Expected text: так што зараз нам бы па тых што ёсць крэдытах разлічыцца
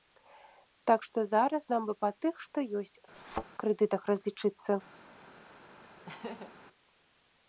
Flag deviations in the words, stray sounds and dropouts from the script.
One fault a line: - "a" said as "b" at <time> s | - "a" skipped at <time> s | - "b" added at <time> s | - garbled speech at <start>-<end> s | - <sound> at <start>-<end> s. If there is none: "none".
- thud at 3.1-3.4 s
- laugh at 6.1-6.5 s